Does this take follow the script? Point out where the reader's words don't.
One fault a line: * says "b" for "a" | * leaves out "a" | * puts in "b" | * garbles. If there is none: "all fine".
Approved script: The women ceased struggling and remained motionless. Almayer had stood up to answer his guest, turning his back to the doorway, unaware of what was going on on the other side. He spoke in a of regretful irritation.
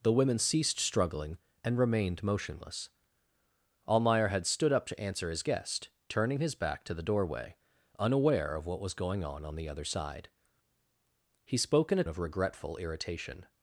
all fine